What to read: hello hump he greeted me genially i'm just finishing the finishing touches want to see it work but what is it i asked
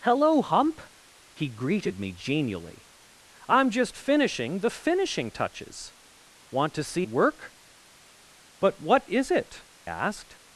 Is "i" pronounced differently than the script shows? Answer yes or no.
yes